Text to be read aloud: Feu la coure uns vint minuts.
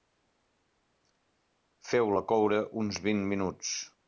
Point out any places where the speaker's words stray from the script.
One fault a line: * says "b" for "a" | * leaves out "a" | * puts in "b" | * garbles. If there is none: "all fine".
all fine